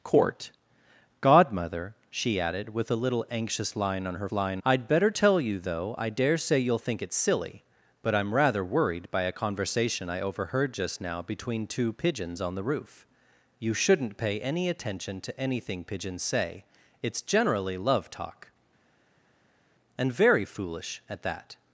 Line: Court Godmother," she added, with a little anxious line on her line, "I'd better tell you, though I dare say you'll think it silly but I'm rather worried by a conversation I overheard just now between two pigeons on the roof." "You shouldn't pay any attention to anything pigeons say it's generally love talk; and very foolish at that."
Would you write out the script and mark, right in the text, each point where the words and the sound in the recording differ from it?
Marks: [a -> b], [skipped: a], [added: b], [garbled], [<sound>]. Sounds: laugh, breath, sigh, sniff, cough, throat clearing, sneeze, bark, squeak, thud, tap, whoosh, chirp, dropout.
Court Godmother," she added, with a little anxious line on her line, "I'd better tell you, though I dare say you'll think it silly but I'm rather worried by a conversation I overheard just now between two pigeons on the roof." "You shouldn't pay any attention to anything pigeons say it's generally love talk; and very foolish at that."